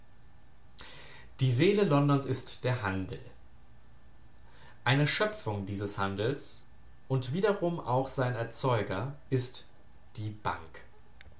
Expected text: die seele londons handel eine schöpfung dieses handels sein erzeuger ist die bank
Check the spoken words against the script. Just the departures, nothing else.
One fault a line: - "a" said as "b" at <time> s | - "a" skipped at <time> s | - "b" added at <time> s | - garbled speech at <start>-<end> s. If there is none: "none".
- "ist der" added at 2.2 s
- "und wiederum auch" added at 7.1 s